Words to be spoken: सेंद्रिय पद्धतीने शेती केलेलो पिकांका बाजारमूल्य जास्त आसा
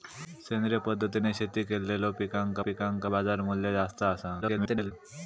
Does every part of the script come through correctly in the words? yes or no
no